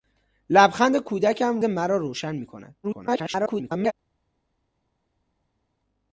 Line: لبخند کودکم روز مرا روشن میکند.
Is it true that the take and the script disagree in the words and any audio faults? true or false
true